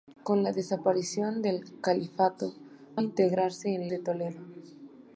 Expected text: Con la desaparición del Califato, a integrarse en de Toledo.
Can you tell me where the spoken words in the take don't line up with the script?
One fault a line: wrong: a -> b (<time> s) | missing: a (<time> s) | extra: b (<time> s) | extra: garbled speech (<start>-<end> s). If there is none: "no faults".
no faults